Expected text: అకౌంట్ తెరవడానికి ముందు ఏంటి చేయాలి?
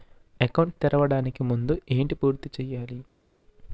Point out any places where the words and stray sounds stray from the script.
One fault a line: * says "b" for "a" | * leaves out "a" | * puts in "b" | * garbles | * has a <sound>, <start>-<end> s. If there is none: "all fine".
* puts in "పూర్తి"